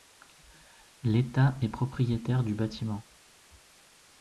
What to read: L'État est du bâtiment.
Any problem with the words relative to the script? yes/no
yes